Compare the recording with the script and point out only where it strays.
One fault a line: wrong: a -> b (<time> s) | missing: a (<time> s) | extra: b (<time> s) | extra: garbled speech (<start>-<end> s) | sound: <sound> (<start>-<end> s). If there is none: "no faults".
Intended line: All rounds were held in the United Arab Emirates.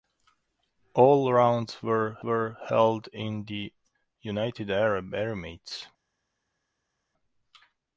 extra: were (2.2 s)